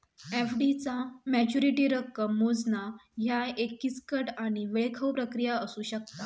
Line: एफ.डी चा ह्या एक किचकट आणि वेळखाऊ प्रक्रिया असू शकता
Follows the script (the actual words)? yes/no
no